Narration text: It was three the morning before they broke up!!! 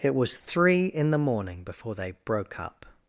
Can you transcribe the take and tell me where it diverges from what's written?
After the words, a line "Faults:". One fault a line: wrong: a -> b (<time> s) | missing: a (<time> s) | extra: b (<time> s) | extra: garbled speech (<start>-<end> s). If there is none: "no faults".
It was three in the morning before they broke up!!!
Faults:
extra: in (0.9 s)